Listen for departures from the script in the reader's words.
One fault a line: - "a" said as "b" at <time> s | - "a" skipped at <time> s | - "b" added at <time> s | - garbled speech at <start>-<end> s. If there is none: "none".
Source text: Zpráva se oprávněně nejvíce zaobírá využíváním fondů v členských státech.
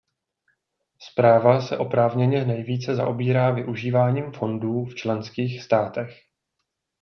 none